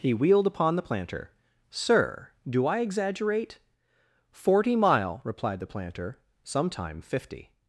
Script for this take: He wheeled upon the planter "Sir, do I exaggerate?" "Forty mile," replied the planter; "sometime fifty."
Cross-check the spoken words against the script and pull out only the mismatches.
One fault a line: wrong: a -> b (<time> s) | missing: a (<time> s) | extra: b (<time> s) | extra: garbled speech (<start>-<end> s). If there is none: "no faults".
no faults